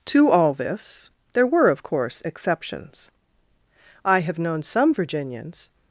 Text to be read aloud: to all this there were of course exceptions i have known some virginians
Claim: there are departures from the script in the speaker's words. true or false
false